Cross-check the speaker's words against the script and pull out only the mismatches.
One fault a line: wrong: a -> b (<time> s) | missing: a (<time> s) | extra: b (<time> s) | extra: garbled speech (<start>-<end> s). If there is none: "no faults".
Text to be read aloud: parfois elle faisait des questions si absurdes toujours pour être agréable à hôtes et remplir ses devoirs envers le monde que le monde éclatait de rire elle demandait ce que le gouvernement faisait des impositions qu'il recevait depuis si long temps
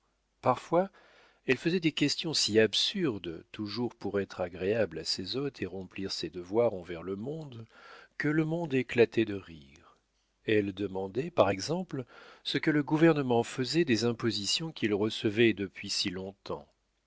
extra: ses (5.0 s)
extra: par exemple (11.3 s)